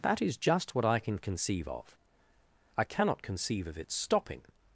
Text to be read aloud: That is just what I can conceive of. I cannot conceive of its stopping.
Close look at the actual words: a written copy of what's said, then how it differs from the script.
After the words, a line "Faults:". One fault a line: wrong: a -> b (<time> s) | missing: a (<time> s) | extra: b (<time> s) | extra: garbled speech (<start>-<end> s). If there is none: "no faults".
That is just what I can conceive of. I cannot conceive of its stopping.
Faults:
no faults